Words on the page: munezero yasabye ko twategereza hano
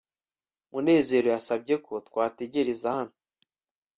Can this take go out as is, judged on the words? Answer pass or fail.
pass